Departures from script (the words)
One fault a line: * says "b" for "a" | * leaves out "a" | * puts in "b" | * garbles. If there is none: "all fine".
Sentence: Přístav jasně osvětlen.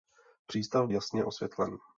all fine